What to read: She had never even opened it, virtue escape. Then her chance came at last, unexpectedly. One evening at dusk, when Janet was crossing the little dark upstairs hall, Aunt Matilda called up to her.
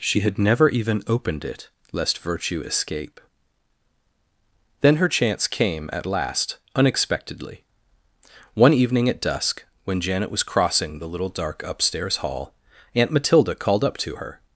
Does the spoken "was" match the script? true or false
true